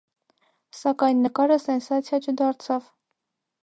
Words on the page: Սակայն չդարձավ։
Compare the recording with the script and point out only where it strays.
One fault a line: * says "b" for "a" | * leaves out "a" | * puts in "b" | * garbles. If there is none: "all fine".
* puts in "նկարը սենսացիա"